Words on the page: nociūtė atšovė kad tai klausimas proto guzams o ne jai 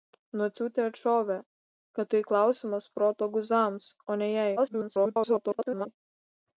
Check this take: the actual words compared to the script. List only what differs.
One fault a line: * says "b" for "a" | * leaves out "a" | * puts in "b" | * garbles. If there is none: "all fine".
* garbles